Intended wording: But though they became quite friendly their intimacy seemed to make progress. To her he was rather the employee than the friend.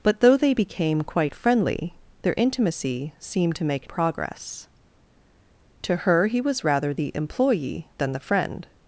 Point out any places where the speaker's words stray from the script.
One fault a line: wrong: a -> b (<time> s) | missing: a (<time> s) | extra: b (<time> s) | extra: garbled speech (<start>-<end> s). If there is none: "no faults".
no faults